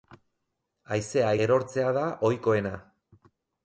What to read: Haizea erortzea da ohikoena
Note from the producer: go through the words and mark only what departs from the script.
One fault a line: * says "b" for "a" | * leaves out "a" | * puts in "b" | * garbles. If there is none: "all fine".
all fine